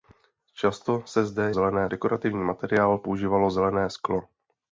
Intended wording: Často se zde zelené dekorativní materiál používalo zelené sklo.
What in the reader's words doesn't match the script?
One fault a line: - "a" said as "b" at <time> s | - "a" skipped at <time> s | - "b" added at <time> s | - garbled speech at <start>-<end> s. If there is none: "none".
none